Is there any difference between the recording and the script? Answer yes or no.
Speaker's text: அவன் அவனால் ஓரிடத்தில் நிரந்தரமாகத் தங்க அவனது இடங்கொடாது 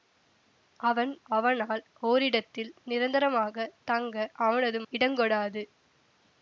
no